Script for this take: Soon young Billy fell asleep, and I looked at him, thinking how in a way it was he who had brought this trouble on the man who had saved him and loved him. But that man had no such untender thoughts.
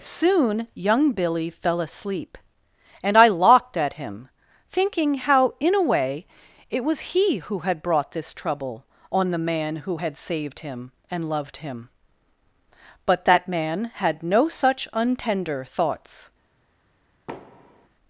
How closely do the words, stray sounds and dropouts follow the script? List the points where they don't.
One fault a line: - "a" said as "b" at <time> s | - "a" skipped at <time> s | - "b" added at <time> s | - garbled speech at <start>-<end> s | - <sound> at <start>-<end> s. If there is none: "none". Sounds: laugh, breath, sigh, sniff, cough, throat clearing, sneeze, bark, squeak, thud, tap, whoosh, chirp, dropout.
- "looked" said as "locked" at 3.3 s
- thud at 17.3-17.9 s